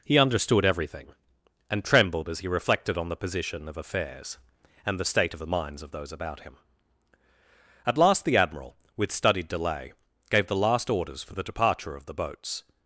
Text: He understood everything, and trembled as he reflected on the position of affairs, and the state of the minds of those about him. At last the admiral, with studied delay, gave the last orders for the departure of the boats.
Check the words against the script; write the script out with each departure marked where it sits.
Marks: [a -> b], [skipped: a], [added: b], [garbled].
He understood everything, and trembled as he reflected on the position of affairs, and the state of the minds of those about him. At last the admiral, with studied delay, gave the last orders for the departure of the boats.